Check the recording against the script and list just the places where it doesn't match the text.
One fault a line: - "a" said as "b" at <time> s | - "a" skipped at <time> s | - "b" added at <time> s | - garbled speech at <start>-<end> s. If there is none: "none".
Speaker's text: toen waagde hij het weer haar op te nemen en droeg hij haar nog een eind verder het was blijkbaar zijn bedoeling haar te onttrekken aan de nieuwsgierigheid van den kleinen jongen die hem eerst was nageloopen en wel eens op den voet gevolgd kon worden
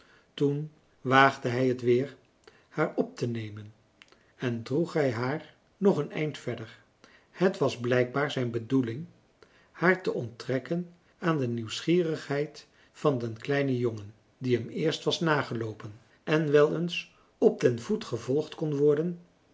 none